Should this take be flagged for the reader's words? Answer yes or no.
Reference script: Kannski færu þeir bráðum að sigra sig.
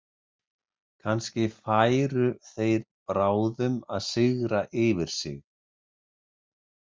yes